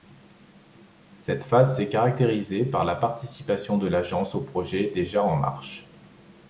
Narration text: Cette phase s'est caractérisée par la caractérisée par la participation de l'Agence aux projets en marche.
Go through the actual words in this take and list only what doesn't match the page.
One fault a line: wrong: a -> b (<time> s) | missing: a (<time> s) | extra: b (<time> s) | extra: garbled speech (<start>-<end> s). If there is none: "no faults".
missing: caractérisée par la (3.0 s)
extra: déjà (4.9 s)